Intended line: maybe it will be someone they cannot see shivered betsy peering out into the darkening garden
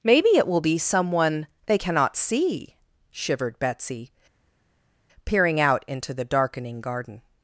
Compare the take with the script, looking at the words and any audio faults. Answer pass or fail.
pass